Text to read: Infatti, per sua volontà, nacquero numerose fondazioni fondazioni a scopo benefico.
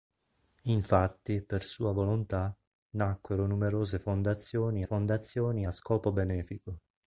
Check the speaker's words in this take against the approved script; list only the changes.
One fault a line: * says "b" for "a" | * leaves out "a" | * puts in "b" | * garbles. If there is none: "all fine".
all fine